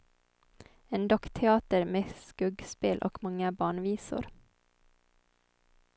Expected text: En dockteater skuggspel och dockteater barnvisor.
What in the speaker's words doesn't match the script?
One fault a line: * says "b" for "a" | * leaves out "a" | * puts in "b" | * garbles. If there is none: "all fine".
* puts in "med"
* says "många" for "dockteater"